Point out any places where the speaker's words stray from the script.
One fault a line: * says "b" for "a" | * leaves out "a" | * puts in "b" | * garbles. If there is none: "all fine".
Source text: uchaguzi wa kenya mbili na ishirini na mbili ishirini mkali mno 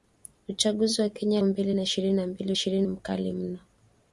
all fine